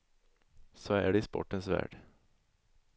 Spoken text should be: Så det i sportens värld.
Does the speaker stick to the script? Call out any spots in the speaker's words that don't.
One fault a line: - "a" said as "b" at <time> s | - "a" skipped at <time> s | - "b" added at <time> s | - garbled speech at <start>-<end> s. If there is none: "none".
- "är" added at 0.9 s